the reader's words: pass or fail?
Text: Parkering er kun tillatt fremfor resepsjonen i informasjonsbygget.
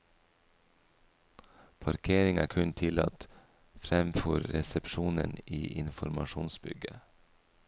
pass